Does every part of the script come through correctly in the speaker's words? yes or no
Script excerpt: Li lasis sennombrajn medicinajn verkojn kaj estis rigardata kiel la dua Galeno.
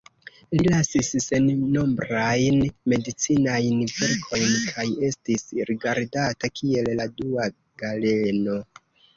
yes